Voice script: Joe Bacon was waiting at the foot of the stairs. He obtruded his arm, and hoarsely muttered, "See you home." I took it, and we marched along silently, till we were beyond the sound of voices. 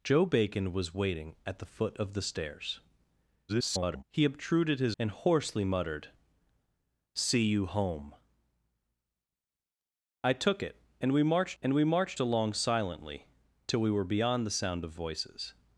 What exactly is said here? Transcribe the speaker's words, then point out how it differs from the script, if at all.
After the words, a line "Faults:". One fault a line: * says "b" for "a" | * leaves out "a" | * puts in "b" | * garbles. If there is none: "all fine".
Joe Bacon was waiting at the foot of the stairs. [garbled] He obtruded his and hoarsely muttered, "See you home." I took it, and we marched and we marched along silently, till we were beyond the sound of voices.
Faults:
* garbles
* leaves out "arm"
* puts in "and we marched"